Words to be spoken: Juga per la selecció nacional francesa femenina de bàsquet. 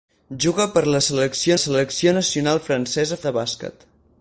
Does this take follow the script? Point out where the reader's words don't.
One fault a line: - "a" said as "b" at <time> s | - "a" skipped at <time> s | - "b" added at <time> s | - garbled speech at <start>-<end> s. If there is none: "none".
- "selecció" added at 1.6 s
- "femenina" skipped at 3.2 s